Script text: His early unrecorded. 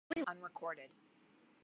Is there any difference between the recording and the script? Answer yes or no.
no